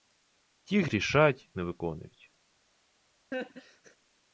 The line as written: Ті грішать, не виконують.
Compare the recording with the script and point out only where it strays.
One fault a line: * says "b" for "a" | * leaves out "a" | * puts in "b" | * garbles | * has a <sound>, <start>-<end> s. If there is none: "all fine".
* has a laugh, 3.3-4.0 s